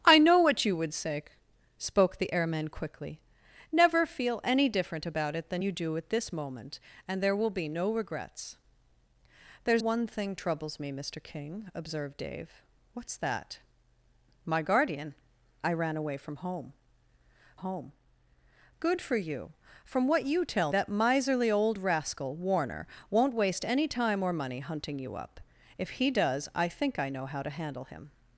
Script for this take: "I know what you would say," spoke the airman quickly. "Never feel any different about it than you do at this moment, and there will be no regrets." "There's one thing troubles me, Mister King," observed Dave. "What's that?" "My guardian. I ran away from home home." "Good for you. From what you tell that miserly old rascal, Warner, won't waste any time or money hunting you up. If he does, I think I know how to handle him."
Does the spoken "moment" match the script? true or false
true